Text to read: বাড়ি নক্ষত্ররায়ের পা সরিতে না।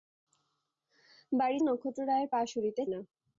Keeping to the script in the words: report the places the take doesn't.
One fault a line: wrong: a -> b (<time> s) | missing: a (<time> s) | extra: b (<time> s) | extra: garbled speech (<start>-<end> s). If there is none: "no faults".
no faults